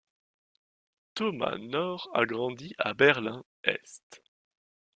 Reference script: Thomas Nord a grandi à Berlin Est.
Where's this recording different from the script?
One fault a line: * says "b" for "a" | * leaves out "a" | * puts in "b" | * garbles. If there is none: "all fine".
all fine